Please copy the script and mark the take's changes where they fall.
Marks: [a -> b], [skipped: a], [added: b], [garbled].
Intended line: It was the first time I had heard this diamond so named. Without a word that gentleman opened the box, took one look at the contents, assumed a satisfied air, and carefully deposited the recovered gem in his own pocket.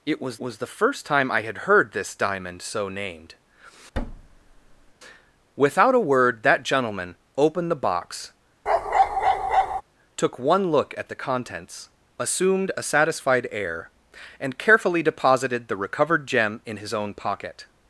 It was [added: was] the first time I had heard this diamond so named. Without a word that gentleman opened the box, took one look at the contents, assumed a satisfied air, and carefully deposited the recovered gem in his own pocket.